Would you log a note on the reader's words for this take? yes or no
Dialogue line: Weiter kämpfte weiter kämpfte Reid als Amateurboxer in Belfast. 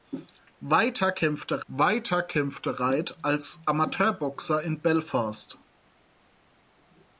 no